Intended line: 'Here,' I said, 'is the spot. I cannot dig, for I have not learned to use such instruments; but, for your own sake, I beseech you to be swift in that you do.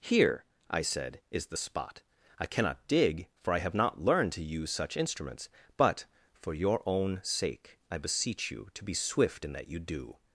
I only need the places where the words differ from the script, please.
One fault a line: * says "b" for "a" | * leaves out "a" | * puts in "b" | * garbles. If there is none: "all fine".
all fine